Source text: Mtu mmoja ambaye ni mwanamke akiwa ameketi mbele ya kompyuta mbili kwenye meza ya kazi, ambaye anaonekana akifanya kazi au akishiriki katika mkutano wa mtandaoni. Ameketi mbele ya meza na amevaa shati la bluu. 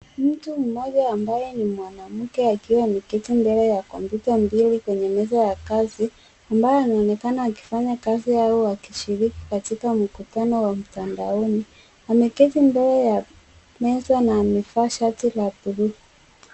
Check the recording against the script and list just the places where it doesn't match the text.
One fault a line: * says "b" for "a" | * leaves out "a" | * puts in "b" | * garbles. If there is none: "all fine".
all fine